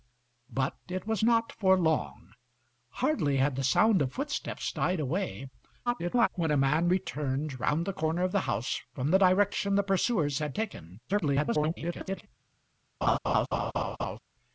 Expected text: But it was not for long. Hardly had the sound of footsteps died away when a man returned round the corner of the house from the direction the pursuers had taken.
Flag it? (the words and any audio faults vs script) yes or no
yes